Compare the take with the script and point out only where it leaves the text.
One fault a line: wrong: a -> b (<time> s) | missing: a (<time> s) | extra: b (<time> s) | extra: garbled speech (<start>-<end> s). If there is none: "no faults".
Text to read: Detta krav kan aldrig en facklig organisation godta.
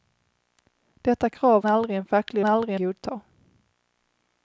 missing: kan (1.6 s)
wrong: organisation -> aldrig (2.4 s)